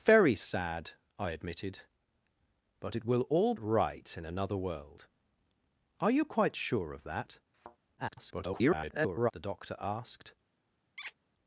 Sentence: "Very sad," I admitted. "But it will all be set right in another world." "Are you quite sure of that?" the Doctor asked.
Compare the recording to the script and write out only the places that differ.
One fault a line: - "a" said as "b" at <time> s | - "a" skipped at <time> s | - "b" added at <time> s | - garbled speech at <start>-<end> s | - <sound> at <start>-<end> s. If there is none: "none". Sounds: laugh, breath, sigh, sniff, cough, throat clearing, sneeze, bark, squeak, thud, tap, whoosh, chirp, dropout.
- "be set" skipped at 3.5 s
- thud at 7.5-7.8 s
- garbled speech at 8.0-9.3 s
- squeak at 11.0-11.1 s